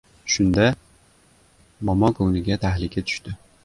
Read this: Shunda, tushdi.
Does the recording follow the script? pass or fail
fail